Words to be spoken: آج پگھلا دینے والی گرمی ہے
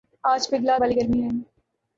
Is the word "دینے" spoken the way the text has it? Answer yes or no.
no